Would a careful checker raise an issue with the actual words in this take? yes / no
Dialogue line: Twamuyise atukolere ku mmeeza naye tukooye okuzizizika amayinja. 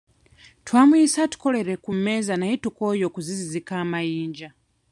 no